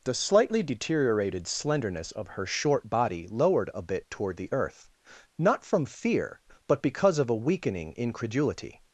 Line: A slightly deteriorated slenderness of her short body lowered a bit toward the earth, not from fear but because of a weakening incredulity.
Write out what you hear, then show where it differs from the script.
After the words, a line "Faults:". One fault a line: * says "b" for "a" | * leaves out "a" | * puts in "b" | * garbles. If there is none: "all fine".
The slightly deteriorated slenderness of her short body lowered a bit toward the earth, not from fear but because of a weakening incredulity.
Faults:
* says "The" for "A"